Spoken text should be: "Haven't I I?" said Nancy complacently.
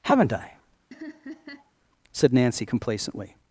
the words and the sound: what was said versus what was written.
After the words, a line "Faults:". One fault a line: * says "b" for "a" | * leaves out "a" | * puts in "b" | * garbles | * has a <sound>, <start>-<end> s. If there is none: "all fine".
"Haven't I?" said Nancy complacently.
Faults:
* leaves out "I"
* has a laugh, 0.9-1.7 s